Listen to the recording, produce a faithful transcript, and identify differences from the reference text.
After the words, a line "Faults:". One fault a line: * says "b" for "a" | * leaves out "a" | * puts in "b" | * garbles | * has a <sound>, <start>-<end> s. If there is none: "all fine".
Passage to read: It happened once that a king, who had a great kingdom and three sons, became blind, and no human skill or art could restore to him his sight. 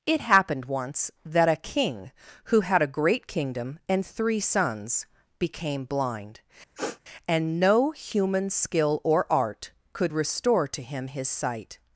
It happened once that a king, who had a great kingdom and three sons, became blind, and no human skill or art could restore to him his sight.
Faults:
* has a sniff, 6.8-7.0 s